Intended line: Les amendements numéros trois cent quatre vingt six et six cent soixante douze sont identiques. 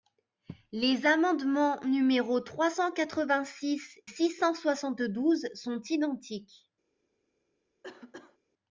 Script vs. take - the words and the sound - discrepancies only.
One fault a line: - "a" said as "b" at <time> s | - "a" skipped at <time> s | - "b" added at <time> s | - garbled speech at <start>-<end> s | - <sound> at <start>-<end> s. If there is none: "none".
- "et" skipped at 4.0 s
- cough at 7.8-8.4 s